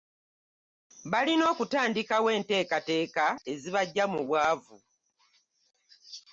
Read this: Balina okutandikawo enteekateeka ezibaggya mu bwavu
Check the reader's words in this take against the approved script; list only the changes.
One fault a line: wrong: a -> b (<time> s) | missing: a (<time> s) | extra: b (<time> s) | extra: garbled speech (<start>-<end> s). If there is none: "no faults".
no faults